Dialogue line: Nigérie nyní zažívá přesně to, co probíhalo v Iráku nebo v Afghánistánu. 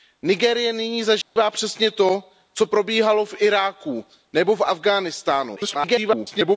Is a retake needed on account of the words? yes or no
yes